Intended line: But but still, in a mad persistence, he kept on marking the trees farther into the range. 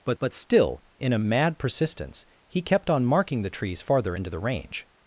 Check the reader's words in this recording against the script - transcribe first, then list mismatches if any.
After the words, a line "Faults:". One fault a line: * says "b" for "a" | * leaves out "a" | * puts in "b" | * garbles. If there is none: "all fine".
But but still, in a mad persistence, he kept on marking the trees farther into the range.
Faults:
all fine